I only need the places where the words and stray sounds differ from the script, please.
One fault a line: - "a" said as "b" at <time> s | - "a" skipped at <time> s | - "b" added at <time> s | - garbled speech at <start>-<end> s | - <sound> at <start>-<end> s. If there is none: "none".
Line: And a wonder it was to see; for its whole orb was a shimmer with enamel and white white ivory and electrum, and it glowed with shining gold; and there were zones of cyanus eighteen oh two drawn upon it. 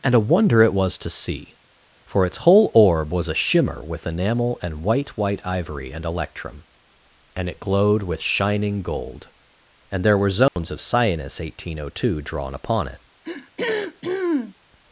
- dropout at 10.5-10.6 s
- throat clearing at 13.2-14.5 s